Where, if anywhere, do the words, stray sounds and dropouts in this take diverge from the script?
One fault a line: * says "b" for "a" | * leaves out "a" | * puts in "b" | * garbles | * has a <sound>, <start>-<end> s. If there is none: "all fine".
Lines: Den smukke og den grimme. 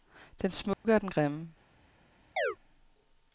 * has a dropout, 0.7-0.8 s
* has a chirp, 2.4-2.6 s